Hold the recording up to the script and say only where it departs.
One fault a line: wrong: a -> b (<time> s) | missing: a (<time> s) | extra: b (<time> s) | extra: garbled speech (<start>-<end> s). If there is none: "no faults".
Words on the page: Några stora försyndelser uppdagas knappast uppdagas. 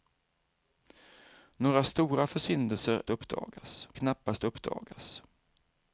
no faults